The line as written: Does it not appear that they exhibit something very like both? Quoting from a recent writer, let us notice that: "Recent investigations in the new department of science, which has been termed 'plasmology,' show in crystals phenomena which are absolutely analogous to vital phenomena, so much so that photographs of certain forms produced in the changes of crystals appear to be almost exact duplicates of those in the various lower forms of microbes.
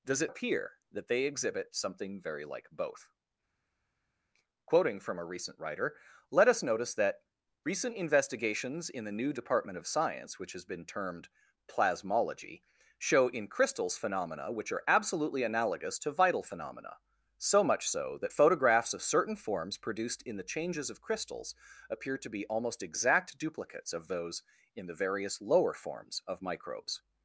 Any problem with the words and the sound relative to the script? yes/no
yes